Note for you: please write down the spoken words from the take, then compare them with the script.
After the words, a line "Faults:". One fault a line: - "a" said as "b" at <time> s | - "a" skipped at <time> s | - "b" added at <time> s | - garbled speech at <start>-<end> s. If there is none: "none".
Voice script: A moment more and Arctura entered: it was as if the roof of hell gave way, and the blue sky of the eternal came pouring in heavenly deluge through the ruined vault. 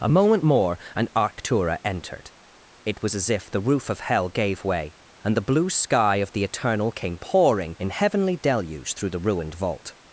A moment more and Arctura entered: it was as if the roof of hell gave way, and the blue sky of the eternal came pouring in heavenly deluge through the ruined vault.
Faults:
none